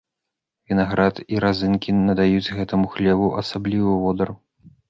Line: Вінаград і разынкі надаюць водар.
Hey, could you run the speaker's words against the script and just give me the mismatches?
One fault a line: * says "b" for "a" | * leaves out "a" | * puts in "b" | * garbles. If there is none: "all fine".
* puts in "гэтаму хлебу асаблівы"